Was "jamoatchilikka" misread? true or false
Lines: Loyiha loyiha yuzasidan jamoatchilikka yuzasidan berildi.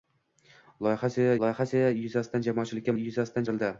false